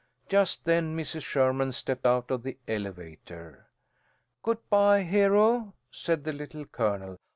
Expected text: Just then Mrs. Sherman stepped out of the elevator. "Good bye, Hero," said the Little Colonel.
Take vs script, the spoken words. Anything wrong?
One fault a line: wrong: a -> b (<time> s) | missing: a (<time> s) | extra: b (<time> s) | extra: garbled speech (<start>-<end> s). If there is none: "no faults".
no faults